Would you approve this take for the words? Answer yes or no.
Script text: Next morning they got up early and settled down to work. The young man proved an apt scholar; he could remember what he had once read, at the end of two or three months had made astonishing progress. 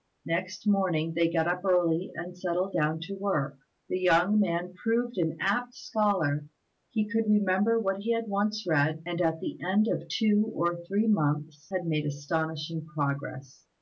no